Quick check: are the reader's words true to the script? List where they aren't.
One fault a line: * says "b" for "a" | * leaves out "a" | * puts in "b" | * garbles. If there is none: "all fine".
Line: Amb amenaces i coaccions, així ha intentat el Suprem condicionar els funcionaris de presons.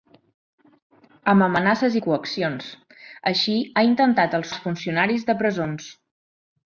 * leaves out "Suprem condicionar"